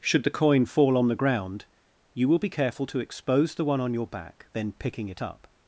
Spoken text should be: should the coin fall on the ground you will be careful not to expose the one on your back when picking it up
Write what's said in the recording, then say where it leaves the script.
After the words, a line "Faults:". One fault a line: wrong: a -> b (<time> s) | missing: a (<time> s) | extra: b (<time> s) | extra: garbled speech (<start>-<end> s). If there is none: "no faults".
should the coin fall on the ground you will be careful to expose the one on your back then picking it up
Faults:
missing: not (2.9 s)
wrong: when -> then (4.5 s)